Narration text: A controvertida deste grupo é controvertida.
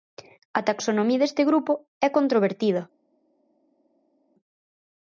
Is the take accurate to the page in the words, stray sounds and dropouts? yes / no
no